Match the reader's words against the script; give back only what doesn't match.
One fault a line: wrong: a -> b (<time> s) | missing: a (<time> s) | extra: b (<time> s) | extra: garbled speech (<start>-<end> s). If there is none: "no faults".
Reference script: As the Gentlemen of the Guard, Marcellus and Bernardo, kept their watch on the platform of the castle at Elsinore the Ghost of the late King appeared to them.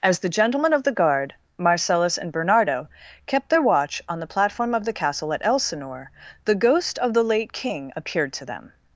no faults